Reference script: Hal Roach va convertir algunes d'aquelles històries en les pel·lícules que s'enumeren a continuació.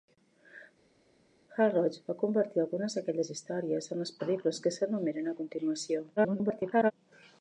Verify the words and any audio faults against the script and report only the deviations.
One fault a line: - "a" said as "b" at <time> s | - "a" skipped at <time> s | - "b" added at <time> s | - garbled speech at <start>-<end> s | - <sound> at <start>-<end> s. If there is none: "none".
- garbled speech at 6.2-6.9 s